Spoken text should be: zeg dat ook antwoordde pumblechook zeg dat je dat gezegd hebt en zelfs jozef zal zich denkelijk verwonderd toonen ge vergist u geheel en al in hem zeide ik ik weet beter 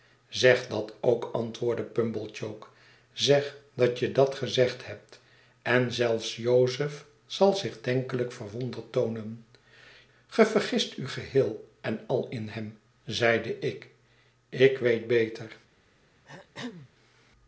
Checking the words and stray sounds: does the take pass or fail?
fail